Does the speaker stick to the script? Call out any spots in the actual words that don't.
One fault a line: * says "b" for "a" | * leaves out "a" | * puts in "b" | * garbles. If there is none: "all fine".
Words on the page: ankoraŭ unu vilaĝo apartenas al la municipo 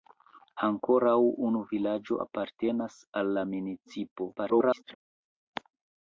* garbles